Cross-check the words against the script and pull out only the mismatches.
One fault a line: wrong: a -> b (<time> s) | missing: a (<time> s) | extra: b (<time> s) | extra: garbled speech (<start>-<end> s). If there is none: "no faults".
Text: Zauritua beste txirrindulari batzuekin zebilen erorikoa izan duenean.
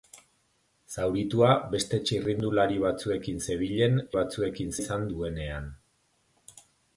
wrong: erorikoa -> batzuekin (4.2 s)